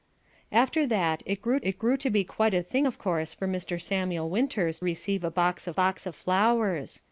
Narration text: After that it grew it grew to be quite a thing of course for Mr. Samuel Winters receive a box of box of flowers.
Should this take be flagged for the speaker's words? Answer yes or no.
no